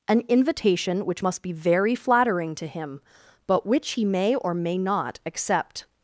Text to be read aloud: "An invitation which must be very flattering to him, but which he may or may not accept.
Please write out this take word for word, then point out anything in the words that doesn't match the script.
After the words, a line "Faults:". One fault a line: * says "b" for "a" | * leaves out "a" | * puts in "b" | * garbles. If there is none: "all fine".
"An invitation which must be very flattering to him, but which he may or may not accept.
Faults:
all fine